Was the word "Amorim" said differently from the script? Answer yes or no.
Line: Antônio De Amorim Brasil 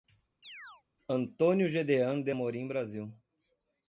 no